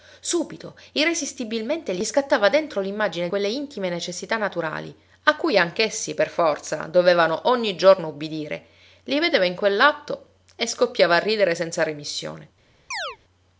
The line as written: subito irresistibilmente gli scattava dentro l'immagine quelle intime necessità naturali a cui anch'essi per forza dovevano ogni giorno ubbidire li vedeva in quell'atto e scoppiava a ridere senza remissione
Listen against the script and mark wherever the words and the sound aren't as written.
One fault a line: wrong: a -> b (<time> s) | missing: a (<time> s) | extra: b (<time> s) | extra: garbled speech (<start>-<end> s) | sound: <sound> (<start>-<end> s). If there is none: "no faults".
sound: chirp (12.9-13.2 s)